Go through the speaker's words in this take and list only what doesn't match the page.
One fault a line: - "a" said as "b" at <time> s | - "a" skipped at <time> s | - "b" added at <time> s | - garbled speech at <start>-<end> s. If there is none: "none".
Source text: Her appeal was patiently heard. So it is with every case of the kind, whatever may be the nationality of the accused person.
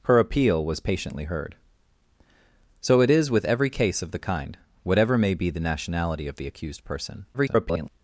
- garbled speech at 7.3-7.9 s